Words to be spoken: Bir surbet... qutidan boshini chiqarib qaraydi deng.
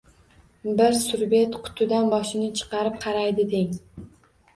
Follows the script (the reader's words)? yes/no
yes